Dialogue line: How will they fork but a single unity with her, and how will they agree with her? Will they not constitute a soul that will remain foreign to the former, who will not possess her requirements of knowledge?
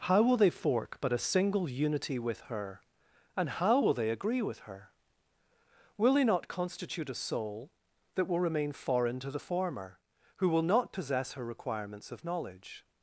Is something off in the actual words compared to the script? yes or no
no